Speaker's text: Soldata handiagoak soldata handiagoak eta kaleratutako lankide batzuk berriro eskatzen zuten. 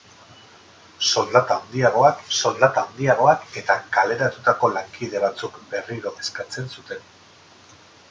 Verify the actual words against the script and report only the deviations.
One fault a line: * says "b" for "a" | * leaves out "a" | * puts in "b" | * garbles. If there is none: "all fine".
all fine